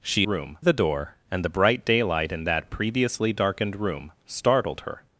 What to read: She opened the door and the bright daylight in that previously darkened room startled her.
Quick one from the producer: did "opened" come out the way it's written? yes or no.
no